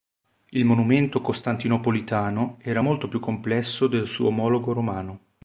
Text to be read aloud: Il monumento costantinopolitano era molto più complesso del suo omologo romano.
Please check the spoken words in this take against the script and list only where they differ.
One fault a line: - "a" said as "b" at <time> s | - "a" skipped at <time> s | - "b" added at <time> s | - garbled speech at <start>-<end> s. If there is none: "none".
none